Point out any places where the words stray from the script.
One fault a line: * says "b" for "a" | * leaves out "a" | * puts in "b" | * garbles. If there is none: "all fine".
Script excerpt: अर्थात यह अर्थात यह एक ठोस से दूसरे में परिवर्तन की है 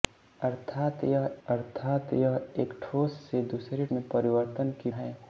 all fine